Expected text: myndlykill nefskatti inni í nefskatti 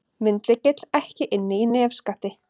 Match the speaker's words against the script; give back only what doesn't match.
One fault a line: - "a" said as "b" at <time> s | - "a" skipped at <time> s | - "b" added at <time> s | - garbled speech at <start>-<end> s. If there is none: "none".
- "nefskatti" said as "ekki" at 1.0 s